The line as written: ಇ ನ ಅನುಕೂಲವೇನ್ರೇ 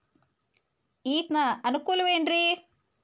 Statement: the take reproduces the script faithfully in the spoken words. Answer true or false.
true